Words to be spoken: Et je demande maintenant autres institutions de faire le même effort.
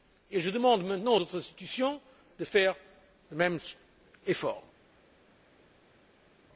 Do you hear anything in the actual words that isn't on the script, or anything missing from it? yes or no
no